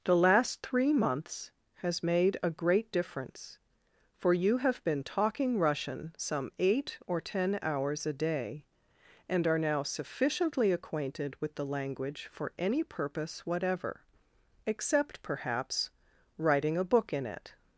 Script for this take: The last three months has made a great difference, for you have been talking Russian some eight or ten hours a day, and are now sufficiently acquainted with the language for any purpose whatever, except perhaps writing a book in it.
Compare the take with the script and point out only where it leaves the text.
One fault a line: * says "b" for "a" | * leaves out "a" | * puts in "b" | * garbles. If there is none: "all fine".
all fine